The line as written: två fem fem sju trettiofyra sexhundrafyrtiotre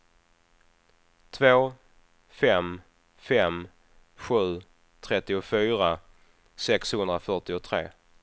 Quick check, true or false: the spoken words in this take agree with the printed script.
true